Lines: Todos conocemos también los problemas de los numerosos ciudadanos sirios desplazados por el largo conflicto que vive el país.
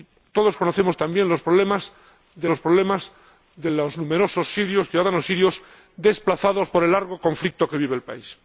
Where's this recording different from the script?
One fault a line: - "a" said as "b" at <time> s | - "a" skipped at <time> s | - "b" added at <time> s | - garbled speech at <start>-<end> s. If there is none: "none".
- "problemas de los" added at 2.6 s